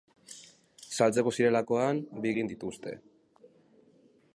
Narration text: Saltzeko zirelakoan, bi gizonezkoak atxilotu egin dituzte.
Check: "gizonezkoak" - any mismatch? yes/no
yes